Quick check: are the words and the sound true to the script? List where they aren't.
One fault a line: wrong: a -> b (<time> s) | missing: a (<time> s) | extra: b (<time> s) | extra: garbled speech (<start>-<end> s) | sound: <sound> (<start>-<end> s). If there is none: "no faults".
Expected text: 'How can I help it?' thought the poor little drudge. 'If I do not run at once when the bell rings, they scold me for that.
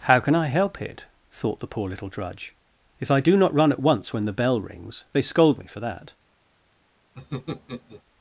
sound: laugh (7.2-8.0 s)